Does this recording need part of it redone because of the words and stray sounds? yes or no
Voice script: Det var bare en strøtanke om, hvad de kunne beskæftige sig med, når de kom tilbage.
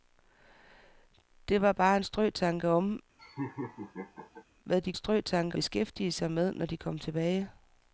yes